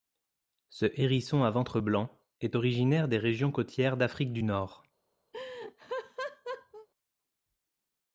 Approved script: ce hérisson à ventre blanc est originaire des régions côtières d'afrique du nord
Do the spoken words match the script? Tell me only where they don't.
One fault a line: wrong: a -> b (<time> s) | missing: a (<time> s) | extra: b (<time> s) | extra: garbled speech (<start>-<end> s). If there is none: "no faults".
no faults